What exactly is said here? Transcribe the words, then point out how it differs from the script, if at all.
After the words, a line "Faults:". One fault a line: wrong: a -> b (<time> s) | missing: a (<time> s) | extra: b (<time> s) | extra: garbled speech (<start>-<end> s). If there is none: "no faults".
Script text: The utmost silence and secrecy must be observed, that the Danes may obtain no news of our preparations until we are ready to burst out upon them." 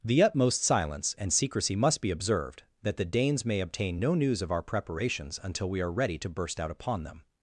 The utmost silence and secrecy must be observed, that the Danes may obtain no news of our preparations until we are ready to burst out upon them."
Faults:
no faults